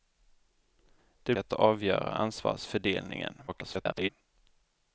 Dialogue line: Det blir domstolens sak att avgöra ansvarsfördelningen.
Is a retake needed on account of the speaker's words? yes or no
yes